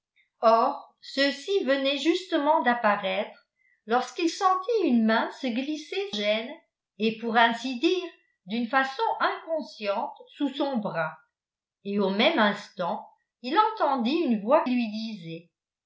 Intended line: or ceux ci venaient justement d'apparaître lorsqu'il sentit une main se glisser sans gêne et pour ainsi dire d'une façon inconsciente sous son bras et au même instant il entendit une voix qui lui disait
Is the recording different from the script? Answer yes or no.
yes